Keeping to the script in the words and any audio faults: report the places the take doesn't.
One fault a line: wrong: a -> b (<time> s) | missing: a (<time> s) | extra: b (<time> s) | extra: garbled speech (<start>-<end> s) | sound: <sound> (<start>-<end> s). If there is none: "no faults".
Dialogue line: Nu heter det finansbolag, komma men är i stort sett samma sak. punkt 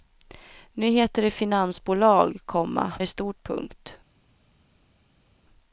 missing: men är (2.9 s)
missing: sett samma sak (3.4 s)